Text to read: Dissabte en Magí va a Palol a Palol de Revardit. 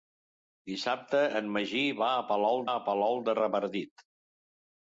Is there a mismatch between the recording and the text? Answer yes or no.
no